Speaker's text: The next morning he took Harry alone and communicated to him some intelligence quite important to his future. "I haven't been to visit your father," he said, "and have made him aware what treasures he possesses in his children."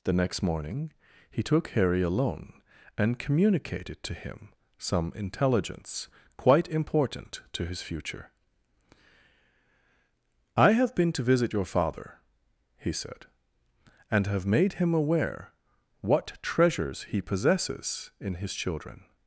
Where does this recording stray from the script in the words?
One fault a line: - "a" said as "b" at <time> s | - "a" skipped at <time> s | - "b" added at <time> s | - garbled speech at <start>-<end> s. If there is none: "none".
- "haven't" said as "have" at 10.7 s